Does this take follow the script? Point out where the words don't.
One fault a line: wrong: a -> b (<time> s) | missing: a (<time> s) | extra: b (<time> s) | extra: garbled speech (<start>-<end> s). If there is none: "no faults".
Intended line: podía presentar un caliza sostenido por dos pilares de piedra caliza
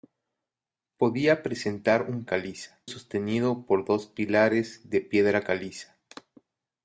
no faults